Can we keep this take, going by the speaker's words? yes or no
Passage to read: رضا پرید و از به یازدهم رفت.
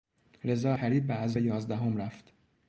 yes